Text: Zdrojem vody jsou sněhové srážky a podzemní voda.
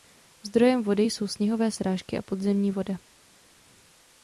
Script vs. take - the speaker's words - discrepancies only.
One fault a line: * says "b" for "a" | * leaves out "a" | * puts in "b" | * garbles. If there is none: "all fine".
all fine